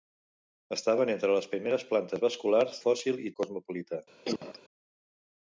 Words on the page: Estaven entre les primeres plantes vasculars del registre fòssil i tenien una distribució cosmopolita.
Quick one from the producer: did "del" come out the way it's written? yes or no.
no